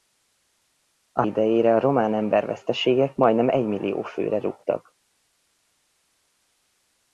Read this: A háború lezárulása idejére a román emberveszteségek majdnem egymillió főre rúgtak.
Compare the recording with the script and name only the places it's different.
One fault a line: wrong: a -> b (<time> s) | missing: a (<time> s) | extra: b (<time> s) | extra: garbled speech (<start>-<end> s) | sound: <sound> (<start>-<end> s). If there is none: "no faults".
missing: háború lezárulása (1.2 s)